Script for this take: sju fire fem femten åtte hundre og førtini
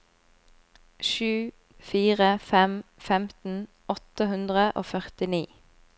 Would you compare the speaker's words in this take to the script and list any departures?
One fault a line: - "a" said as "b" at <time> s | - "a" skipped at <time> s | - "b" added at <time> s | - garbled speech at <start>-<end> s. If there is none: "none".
none